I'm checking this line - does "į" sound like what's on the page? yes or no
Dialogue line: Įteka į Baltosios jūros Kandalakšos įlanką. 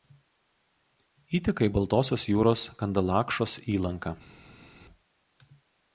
yes